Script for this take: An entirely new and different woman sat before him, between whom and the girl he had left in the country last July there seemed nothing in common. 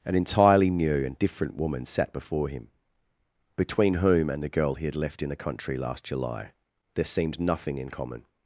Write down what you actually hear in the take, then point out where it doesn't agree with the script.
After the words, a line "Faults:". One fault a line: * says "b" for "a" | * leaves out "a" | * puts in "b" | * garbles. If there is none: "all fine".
An entirely new and different woman sat before him, between whom and the girl he had left in the country last July there seemed nothing in common.
Faults:
all fine